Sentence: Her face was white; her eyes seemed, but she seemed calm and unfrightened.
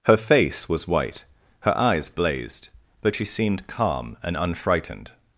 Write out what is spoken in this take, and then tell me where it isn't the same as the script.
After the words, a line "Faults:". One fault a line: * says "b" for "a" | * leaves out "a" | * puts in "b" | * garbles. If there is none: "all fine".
Her face was white; her eyes blazed, but she seemed calm and unfrightened.
Faults:
* says "blazed" for "seemed"